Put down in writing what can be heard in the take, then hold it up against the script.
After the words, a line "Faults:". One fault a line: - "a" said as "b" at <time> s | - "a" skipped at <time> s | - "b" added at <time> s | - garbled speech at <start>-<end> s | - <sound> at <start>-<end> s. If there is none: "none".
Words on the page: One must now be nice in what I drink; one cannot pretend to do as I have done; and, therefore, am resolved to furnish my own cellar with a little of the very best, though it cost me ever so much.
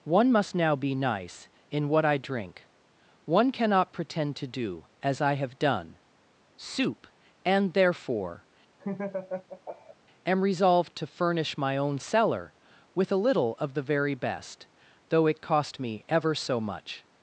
One must now be nice in what I drink; one cannot pretend to do as I have done; soup and, therefore, am resolved to furnish my own cellar with a little of the very best, though it cost me ever so much.
Faults:
- "soup" added at 6.6 s
- laugh at 8.8-10.0 s